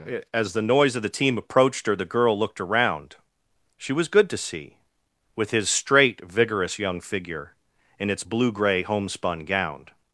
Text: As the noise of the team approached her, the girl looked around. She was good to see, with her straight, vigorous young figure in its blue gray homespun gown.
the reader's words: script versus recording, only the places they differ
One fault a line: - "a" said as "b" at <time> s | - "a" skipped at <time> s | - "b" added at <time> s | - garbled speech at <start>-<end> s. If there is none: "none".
- "her" said as "his" at 5.5 s